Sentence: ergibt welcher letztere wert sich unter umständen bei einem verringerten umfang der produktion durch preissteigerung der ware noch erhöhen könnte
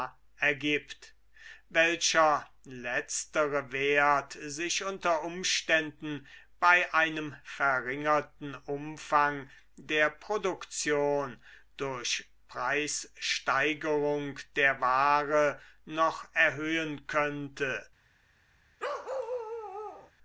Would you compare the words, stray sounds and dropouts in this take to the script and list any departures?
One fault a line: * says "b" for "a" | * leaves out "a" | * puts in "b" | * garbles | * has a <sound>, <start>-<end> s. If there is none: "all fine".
* has a bark, 18.8-20.1 s